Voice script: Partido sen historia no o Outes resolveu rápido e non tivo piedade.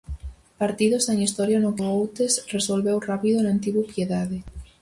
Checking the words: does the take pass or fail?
pass